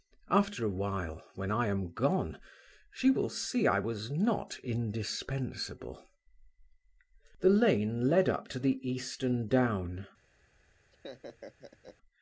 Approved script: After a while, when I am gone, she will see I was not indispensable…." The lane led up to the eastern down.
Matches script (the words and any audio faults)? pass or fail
fail